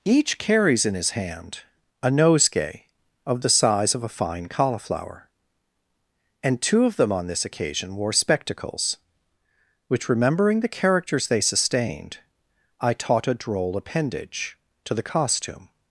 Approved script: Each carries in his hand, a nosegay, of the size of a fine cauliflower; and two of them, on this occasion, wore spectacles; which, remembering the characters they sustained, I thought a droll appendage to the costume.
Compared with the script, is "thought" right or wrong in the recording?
wrong